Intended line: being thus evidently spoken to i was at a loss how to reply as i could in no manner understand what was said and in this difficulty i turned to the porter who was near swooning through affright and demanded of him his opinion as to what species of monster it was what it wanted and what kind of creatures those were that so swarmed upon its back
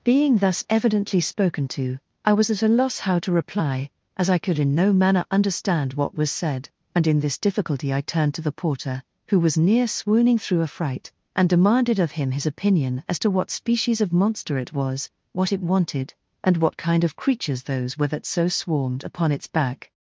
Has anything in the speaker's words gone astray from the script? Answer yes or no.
no